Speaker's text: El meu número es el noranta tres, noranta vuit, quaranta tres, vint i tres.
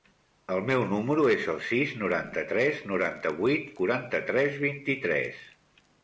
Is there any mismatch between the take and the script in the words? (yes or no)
yes